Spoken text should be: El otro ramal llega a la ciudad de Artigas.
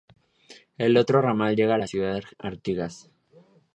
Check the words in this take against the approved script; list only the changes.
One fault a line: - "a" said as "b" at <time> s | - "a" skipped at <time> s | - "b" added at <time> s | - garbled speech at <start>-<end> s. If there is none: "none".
none